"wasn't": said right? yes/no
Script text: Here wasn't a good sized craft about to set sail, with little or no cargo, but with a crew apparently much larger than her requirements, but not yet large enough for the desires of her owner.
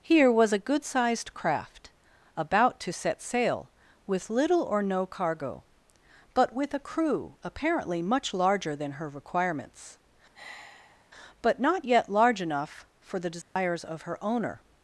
no